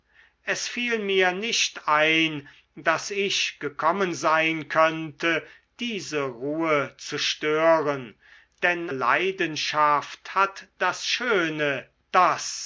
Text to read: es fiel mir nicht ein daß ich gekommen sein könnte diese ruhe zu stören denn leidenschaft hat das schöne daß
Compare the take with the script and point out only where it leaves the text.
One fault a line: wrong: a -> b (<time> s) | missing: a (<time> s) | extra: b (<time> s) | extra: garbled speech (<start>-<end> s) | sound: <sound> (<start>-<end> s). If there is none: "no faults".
no faults